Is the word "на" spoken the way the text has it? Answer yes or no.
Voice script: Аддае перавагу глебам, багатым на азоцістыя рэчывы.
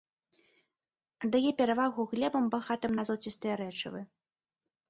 yes